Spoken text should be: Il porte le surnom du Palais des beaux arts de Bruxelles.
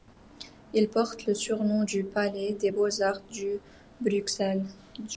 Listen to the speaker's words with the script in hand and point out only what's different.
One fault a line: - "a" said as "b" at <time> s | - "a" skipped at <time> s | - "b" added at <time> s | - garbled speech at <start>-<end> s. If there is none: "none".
none